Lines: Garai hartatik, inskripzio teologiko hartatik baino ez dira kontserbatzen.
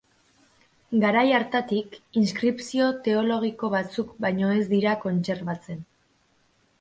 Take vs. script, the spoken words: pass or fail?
fail